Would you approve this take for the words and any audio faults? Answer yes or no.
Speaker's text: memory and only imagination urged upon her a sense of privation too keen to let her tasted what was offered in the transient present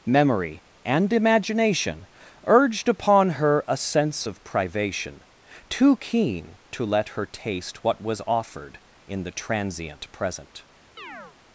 no